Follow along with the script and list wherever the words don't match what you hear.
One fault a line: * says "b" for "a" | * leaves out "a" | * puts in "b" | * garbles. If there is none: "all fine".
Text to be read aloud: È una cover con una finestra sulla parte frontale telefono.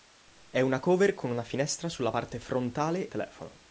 all fine